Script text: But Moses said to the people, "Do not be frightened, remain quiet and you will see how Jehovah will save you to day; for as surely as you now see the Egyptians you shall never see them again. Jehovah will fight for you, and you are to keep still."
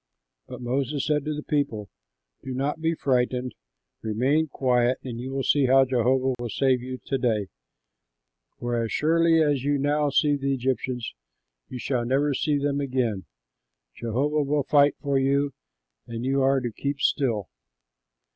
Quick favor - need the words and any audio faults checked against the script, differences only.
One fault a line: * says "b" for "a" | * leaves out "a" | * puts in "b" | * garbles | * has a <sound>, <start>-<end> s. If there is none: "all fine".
* has a dropout, 6.3-6.4 s